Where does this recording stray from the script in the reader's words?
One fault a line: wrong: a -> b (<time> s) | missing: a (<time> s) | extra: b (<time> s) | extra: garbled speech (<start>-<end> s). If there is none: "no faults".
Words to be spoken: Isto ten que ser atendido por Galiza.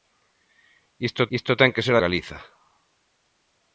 extra: isto (1.4 s)
missing: atendido por (2.0 s)